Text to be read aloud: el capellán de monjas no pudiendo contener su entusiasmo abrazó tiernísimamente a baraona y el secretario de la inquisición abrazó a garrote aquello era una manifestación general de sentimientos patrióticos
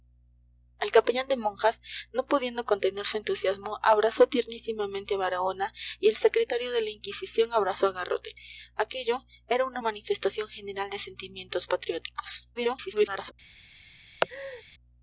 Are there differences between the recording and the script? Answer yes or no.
yes